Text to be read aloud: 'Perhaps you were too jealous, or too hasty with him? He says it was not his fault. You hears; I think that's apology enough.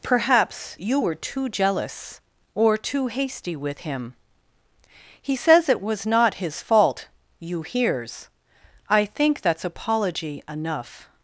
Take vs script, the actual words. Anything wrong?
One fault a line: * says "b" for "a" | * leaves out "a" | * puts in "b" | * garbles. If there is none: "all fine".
all fine